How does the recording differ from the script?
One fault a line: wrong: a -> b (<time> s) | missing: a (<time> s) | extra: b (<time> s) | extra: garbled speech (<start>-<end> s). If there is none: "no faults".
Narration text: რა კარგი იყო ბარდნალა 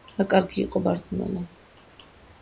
no faults